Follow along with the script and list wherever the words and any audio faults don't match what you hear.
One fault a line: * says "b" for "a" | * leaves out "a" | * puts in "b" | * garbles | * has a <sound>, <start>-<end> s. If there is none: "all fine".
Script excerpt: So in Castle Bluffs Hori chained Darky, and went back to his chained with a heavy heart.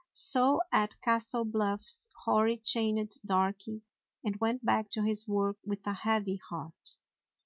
* says "at" for "in"
* says "work" for "chained"